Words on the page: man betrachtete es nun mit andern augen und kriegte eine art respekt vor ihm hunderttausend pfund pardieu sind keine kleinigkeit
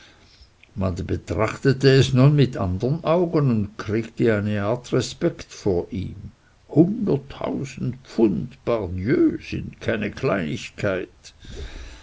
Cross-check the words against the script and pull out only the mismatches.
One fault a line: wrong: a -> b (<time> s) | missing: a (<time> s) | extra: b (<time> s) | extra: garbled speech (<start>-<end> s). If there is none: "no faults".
no faults